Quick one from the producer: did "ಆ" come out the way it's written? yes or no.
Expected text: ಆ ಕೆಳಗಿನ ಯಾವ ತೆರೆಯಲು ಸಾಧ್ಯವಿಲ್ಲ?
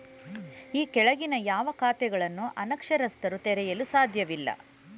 no